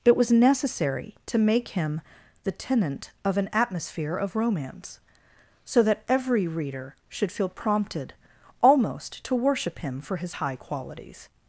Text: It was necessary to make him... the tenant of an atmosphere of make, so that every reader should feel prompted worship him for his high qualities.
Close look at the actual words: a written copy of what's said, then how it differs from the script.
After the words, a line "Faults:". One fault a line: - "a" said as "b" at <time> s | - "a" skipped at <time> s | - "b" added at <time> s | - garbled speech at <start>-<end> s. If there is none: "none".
It was necessary to make him... the tenant of an atmosphere of romance, so that every reader should feel prompted almost to worship him for his high qualities.
Faults:
- "make" said as "romance" at 4.3 s
- "almost to" added at 8.6 s